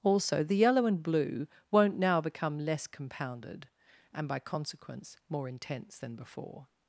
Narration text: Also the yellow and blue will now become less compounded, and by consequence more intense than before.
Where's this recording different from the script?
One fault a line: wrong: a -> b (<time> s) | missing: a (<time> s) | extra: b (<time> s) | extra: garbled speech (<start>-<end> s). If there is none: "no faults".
wrong: will -> won't (1.7 s)